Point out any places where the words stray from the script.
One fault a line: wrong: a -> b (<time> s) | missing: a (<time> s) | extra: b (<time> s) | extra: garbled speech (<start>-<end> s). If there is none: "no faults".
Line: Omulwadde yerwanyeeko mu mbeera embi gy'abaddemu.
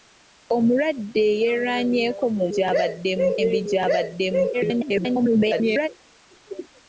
wrong: mbeera -> gy'abaddemu (2.5 s)
extra: garbled speech (4.5-5.9 s)